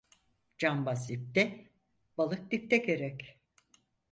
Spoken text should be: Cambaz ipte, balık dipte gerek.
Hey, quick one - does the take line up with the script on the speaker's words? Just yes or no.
yes